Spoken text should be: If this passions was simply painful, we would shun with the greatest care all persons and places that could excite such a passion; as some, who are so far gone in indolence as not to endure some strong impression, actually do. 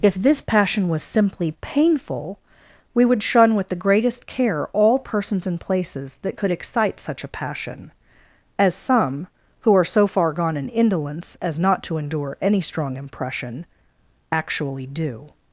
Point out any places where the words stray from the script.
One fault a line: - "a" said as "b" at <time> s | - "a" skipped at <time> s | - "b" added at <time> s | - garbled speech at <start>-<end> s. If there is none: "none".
- "passions" said as "passion" at 0.4 s
- "some" said as "any" at 12.4 s